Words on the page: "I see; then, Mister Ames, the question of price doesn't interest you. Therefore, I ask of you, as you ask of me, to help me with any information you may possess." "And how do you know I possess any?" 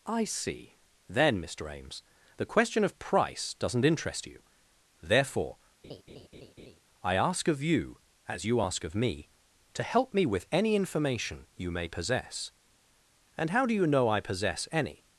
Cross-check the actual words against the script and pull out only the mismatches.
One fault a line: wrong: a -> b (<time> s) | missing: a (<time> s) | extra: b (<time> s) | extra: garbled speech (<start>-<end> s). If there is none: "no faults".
no faults